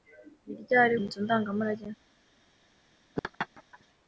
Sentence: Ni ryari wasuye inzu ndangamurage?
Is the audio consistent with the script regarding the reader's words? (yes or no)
no